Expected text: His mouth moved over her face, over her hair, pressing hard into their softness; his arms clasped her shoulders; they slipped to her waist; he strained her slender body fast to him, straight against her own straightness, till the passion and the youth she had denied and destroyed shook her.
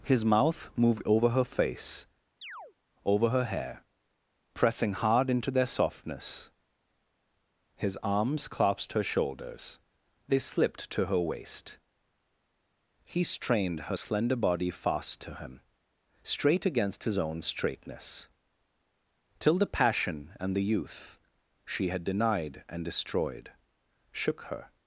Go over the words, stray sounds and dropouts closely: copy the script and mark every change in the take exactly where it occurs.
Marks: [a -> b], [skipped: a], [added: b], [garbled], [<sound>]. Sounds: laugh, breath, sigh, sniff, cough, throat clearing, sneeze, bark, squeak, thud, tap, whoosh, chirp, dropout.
His mouth moved over her face, [chirp] over her hair, pressing hard into their softness; his arms clasped her shoulders; they slipped to her waist; he strained her slender body fast to him, straight against [her -> his] own straightness, till the passion and the youth she had denied and destroyed shook her.